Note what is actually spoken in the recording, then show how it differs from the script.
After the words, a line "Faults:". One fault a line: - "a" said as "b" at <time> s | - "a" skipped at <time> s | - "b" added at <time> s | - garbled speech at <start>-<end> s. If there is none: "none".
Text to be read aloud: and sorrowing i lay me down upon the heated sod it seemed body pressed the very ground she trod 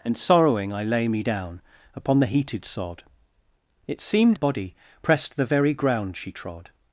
and sorrowing i lay me down upon the heated sod it seemed body pressed the very ground she trod
Faults:
none